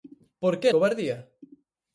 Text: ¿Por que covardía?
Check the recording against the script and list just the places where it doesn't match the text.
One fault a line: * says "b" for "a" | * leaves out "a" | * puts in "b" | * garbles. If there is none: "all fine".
all fine